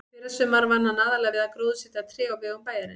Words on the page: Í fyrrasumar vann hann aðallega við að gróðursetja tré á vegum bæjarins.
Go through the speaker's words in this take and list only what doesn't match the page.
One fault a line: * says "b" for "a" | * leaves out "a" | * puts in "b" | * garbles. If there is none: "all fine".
all fine